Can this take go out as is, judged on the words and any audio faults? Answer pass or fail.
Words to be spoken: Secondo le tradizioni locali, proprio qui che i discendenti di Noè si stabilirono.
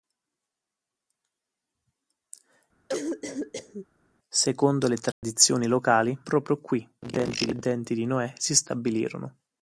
fail